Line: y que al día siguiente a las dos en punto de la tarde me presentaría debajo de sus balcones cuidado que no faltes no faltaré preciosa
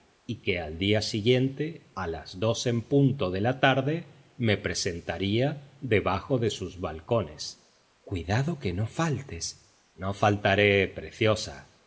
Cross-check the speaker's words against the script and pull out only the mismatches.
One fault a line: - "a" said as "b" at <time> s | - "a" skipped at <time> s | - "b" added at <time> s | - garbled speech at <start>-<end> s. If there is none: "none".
none